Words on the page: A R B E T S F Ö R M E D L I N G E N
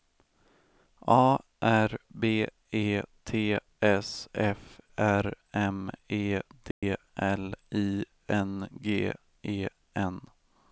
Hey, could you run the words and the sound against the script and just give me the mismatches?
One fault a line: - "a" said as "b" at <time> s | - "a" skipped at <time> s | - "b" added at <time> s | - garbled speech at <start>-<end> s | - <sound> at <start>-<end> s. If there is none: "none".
- "Ö" skipped at 4.8 s
- dropout at 6.7-6.8 s